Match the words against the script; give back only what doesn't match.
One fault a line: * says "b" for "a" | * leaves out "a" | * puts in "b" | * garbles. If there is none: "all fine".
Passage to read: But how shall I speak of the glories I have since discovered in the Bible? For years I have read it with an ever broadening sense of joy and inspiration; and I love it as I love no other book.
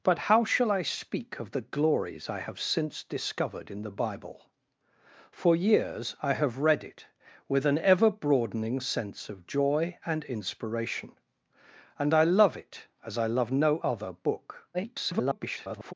* garbles